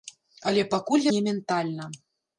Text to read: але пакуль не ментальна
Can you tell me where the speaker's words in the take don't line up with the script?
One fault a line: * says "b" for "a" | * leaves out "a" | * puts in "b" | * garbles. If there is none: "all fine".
all fine